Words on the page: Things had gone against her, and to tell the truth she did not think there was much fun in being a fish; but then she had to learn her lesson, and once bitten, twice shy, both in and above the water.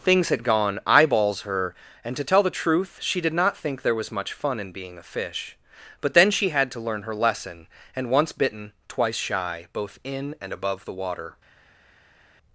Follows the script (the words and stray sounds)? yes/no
no